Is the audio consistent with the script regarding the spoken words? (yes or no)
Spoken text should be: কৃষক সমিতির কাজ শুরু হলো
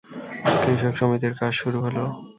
yes